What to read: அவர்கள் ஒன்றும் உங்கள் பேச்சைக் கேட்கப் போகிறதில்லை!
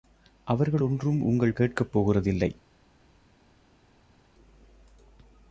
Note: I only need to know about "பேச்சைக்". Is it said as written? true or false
false